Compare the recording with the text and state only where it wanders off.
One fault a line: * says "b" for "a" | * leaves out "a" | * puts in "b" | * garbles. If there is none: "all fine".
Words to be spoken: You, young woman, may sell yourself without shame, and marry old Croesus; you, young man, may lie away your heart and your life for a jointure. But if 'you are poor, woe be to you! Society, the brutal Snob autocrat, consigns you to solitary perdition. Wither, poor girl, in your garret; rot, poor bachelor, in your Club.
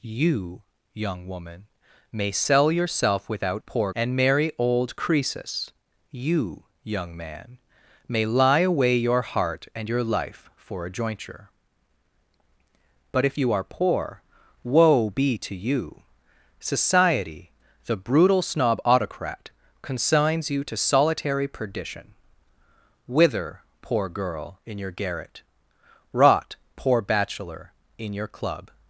* says "poor" for "shame"